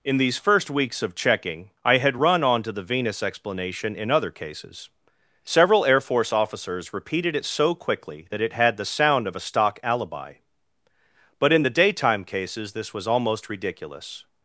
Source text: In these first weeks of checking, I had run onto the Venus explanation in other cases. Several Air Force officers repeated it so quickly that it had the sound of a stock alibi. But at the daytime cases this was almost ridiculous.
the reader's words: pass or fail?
fail